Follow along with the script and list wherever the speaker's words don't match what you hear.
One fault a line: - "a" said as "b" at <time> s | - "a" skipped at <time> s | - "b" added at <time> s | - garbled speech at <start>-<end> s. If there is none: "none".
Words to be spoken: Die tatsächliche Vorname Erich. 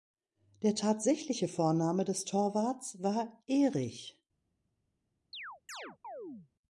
- "Die" said as "Der" at 0.6 s
- "des Torwarts war" added at 2.0 s